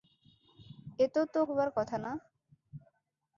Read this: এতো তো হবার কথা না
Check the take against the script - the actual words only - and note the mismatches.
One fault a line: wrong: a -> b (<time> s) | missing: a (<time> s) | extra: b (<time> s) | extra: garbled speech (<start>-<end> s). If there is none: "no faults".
no faults